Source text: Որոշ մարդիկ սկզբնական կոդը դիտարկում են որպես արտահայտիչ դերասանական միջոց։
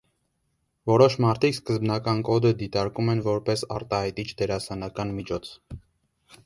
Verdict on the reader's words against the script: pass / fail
pass